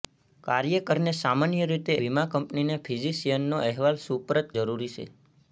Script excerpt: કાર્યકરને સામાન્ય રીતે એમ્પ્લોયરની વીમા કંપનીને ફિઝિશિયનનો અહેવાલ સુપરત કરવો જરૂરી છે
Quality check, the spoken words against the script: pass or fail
fail